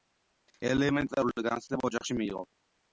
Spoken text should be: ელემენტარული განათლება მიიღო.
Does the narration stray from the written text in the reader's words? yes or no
yes